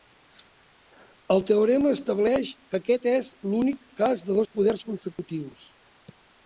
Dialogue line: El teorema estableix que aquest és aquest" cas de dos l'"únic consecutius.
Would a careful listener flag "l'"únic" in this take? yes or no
yes